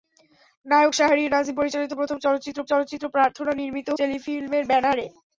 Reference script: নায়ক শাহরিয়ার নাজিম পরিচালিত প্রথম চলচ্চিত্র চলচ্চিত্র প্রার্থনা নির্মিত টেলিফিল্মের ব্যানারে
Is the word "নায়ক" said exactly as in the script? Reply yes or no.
yes